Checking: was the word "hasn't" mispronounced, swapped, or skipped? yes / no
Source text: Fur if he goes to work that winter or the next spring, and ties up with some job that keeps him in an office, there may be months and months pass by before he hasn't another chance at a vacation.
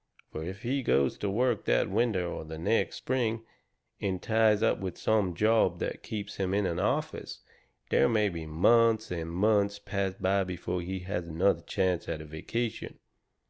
yes